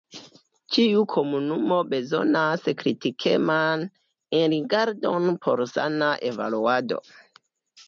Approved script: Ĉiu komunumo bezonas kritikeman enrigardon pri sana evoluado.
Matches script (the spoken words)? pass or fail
fail